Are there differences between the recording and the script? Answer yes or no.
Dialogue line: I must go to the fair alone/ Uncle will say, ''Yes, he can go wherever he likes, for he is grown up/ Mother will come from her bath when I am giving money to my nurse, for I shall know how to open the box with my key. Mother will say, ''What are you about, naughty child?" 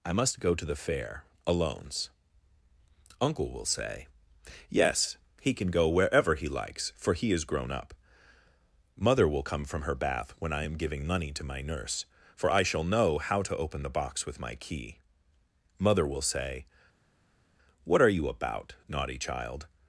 no